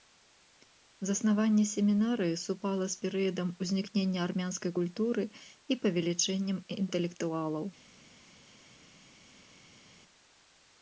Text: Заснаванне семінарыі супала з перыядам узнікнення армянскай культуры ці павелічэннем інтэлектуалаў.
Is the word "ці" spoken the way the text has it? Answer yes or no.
no